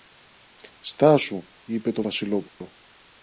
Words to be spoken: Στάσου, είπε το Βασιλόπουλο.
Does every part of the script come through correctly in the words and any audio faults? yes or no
no